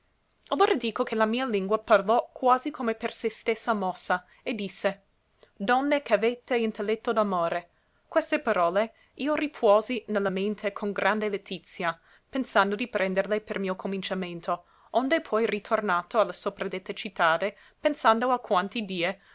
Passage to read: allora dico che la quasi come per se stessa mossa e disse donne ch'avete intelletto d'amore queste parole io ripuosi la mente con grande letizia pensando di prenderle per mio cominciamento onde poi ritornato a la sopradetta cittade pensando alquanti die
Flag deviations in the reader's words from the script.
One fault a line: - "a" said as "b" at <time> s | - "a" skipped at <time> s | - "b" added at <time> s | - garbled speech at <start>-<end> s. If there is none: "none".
- "mia lingua parlò" added at 1.2 s
- "ne" added at 10.1 s